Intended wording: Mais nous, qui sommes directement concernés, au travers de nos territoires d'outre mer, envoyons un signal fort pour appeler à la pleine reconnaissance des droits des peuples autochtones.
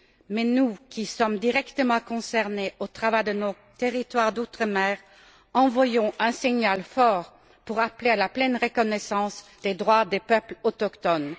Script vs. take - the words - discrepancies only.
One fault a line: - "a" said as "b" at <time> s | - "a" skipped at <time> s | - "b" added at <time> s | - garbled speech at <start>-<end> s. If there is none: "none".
none